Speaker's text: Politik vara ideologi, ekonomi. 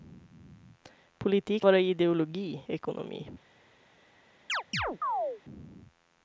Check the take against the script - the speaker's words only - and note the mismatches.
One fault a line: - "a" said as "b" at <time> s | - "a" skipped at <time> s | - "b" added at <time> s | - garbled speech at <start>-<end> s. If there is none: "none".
none